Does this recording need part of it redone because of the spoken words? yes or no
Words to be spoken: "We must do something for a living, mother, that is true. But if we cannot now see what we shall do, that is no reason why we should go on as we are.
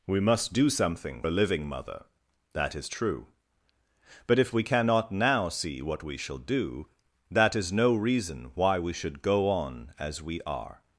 yes